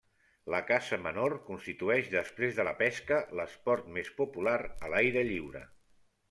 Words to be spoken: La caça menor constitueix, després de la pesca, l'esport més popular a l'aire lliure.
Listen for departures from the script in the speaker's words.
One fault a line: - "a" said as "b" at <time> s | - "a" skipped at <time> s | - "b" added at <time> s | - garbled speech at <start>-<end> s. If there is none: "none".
none